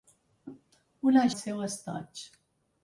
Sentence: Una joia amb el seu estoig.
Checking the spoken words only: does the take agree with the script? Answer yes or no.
no